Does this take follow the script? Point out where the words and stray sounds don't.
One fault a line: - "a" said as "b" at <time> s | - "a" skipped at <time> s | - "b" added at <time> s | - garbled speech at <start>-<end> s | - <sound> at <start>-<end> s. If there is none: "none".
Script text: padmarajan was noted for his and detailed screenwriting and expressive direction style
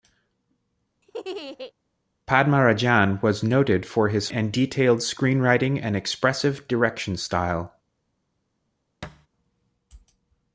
- laugh at 1.0-1.7 s
- thud at 9.0-9.3 s